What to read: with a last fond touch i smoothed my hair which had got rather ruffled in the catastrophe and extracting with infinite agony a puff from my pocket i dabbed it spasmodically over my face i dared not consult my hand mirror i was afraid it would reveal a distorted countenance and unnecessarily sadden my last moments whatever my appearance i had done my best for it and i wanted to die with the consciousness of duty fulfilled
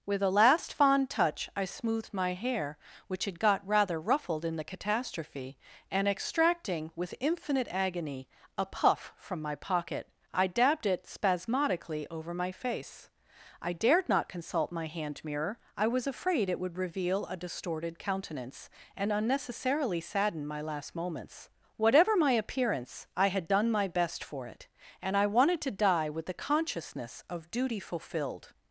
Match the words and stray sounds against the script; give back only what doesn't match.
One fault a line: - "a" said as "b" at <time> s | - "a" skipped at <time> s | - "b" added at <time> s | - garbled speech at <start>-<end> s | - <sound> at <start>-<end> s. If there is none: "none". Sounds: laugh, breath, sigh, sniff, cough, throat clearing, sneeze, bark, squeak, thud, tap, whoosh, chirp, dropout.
none